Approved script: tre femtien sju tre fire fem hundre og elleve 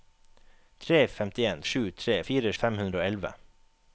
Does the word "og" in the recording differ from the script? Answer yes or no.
no